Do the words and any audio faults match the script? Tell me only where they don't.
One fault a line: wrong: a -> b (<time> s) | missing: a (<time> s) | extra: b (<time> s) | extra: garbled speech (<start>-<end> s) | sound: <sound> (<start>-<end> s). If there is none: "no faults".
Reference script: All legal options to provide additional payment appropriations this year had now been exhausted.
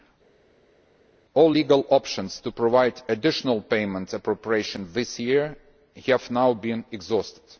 wrong: had -> have (6.1 s)